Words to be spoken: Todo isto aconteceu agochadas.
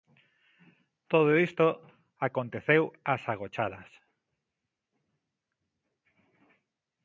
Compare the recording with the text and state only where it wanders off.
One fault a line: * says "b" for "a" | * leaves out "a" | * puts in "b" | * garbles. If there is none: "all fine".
* puts in "ás"